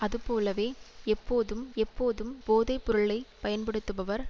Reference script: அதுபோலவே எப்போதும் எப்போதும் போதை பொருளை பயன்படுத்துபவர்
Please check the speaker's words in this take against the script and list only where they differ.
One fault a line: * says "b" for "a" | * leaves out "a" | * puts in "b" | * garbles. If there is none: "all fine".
all fine